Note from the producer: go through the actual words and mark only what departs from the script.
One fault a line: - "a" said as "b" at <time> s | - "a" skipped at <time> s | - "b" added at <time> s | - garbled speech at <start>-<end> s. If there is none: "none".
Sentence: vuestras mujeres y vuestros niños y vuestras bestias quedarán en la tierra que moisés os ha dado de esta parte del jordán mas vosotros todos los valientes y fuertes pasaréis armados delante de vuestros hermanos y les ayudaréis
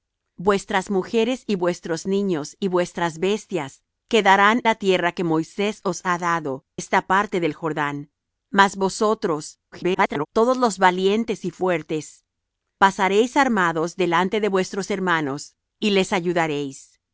- "en" skipped at 4.6 s
- "de" skipped at 6.6 s
- garbled speech at 9.7-10.3 s